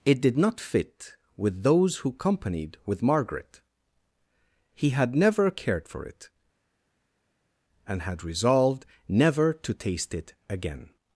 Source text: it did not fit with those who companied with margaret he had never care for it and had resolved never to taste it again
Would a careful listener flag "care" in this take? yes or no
yes